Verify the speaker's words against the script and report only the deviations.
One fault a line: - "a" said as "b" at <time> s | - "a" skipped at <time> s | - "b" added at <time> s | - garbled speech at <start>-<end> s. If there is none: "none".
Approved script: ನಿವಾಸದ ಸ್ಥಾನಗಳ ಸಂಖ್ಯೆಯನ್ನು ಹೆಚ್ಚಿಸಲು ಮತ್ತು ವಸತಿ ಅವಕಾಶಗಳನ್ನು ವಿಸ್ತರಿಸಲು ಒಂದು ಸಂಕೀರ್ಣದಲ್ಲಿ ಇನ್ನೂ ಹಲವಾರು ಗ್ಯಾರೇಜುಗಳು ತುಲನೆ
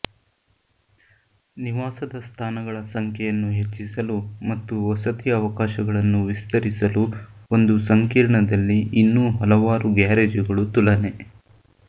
none